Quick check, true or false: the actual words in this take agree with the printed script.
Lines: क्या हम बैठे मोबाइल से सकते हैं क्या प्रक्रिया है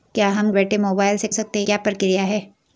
true